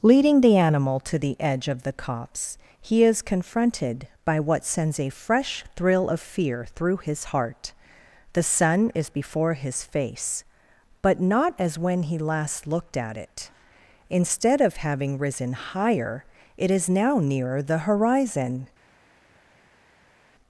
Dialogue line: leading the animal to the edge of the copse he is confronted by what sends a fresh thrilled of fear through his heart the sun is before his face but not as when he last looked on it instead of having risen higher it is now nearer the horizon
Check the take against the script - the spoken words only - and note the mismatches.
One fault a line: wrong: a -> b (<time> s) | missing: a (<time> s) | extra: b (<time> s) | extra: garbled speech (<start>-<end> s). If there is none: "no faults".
wrong: thrilled -> thrill (5.8 s)
wrong: on -> at (13.0 s)